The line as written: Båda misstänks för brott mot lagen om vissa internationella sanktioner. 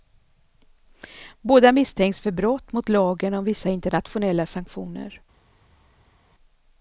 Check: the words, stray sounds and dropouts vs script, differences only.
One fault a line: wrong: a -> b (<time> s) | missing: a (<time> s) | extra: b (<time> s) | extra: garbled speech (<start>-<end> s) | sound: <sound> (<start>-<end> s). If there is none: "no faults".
no faults